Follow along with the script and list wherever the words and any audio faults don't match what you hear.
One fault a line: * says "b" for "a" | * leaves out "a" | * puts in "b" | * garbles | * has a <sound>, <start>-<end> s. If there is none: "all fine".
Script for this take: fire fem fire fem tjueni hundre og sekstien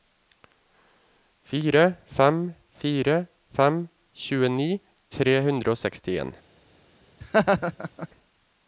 * puts in "tre"
* has a laugh, 7.2-8.1 s